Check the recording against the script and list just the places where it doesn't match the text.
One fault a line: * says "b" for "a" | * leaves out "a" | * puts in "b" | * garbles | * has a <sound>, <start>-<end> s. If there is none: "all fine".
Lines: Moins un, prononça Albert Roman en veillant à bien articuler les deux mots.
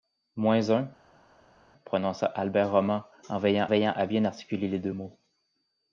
* puts in "veillant"